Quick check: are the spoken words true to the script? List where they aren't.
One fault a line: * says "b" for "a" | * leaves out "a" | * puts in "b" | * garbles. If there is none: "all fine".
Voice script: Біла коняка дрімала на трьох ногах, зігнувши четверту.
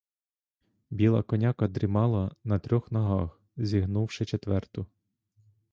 all fine